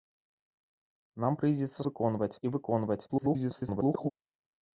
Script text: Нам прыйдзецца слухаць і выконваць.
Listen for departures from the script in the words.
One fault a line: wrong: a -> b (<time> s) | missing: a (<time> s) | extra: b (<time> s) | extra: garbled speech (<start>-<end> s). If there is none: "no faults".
wrong: слухаць -> выконваць (1.9 s)
extra: garbled speech (3.1-4.1 s)